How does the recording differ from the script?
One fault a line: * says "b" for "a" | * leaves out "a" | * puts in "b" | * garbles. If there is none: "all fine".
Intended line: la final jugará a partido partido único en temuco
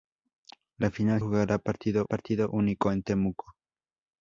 all fine